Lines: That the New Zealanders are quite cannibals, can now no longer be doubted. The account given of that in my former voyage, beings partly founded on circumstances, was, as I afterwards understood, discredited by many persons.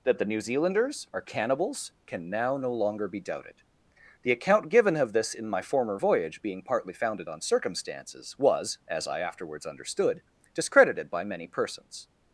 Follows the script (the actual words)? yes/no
no